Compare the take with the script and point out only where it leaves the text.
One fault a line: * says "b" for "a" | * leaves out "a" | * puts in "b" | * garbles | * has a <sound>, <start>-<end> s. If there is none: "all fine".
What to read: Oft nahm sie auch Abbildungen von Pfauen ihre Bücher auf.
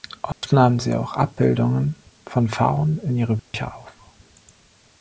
* has a dropout, 0.3-0.4 s
* puts in "in"
* has a dropout, 3.4-3.5 s